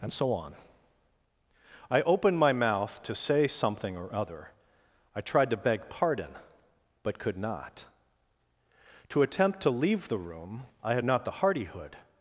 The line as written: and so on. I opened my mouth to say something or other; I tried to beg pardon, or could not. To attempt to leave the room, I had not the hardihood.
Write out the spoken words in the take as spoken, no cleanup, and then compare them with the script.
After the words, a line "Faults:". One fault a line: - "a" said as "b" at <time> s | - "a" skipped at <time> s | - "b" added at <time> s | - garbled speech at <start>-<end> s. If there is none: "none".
and so on. I opened my mouth to say something or other; I tried to beg pardon, but could not. To attempt to leave the room, I had not the hardihood.
Faults:
- "or" said as "but" at 7.0 s